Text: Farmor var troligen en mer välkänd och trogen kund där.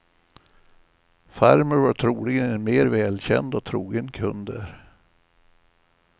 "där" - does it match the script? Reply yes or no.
yes